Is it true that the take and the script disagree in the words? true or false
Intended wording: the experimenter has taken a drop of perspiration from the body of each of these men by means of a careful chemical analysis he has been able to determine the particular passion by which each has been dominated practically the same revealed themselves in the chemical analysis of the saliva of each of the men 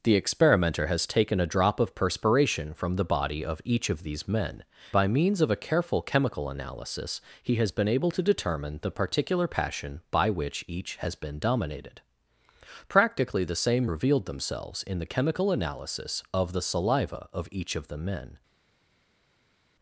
false